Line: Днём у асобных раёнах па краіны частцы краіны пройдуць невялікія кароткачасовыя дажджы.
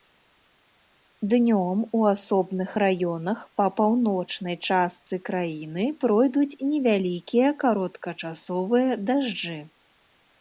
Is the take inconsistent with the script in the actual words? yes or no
yes